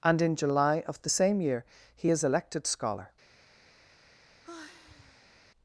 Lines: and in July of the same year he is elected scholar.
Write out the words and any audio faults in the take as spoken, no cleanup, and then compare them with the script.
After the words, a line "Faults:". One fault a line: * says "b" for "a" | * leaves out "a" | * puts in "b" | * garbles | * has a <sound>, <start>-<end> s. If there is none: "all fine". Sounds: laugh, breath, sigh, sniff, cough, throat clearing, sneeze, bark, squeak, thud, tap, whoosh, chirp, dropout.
and in July of the same year he is elected scholar.
Faults:
* has a sigh, 4.4-5.4 s